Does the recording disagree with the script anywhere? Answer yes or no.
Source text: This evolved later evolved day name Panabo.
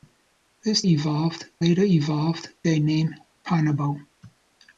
no